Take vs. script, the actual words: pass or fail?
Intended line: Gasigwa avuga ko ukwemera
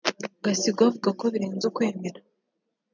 fail